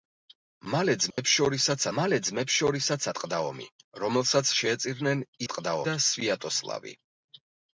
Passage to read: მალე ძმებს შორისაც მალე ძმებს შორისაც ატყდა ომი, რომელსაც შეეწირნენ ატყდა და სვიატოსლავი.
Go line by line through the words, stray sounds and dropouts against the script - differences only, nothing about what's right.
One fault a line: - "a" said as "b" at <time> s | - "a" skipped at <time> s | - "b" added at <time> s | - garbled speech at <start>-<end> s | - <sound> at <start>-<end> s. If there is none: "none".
- dropout at 1.1-1.2 s